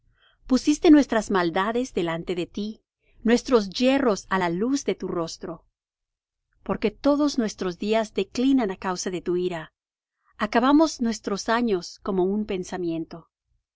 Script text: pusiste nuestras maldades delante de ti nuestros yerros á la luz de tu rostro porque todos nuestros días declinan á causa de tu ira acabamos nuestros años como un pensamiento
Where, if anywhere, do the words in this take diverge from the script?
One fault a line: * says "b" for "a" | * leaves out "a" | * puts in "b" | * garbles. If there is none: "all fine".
all fine